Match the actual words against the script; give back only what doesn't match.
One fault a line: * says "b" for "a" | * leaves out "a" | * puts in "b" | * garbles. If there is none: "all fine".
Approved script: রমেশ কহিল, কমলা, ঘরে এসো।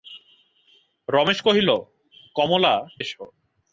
* leaves out "ঘরে"